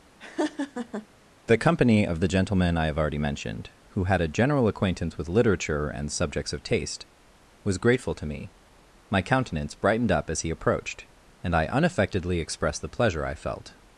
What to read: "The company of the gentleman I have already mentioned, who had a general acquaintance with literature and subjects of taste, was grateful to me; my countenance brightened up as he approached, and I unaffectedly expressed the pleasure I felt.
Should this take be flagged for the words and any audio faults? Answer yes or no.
yes